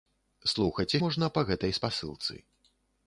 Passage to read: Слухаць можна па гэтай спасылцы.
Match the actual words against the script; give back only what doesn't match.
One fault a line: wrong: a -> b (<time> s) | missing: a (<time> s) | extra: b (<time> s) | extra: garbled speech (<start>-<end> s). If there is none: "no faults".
no faults